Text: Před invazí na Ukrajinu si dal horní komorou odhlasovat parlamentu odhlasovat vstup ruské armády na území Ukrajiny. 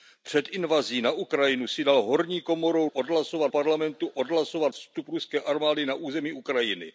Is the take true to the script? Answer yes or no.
yes